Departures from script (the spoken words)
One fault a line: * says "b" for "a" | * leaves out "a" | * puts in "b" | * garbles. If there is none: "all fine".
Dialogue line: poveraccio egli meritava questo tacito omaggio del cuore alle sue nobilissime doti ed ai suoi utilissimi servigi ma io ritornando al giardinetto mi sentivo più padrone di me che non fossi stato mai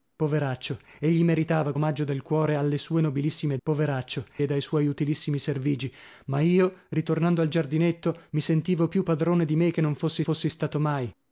* leaves out "questo tacito"
* says "poveraccio" for "doti"
* puts in "fossi"